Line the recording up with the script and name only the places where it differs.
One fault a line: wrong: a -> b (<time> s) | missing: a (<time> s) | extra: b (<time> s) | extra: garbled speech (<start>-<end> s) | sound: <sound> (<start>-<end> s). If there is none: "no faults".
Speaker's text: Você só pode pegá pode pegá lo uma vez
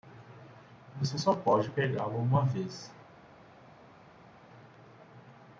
missing: pode pegá (2.1 s)